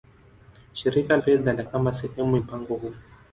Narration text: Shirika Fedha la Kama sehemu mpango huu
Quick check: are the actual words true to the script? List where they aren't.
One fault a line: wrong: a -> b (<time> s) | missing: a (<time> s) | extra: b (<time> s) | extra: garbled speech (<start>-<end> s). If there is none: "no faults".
no faults